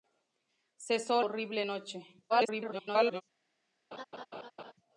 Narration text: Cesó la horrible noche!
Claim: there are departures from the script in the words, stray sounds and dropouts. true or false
true